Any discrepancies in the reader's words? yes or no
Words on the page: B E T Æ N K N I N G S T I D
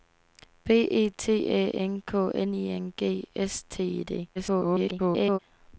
yes